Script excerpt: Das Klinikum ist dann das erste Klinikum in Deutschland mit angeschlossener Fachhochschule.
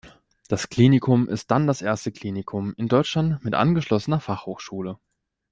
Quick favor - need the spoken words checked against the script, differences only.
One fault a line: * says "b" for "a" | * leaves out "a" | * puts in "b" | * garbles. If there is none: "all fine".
all fine